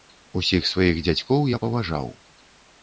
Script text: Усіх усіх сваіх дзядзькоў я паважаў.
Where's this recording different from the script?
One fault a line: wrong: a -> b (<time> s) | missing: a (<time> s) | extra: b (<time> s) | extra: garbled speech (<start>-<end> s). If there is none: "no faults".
missing: усіх (0.6 s)